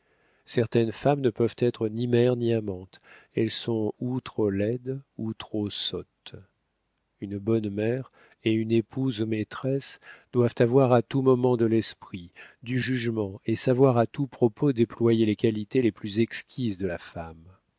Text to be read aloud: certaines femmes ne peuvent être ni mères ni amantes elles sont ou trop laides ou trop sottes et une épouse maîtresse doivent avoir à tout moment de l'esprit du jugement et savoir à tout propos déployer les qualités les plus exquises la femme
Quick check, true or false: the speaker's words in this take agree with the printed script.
false